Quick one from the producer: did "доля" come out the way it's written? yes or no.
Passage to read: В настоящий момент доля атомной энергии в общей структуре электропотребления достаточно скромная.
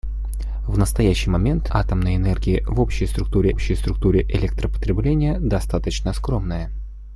no